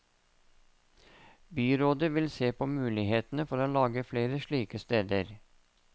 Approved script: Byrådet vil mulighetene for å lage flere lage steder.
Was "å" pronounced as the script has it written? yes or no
yes